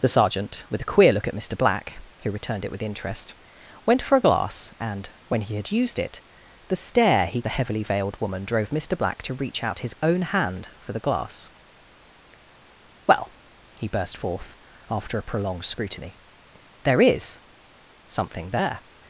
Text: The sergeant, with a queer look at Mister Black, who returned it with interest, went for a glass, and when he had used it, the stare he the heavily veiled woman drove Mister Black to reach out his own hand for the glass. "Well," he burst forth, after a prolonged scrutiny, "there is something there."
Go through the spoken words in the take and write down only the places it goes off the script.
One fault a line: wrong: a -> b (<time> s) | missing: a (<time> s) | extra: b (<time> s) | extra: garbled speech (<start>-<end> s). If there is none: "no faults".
no faults